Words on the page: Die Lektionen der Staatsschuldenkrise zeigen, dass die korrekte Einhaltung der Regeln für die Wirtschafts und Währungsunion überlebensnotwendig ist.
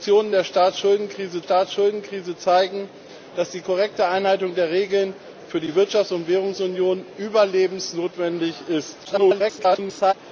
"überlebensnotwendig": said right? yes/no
yes